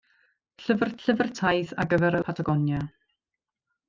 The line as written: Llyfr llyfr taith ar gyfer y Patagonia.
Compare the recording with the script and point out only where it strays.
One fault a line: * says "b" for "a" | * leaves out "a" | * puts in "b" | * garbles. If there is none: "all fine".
all fine